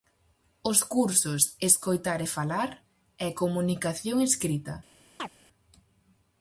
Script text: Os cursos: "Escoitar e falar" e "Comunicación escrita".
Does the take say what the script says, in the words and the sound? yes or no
no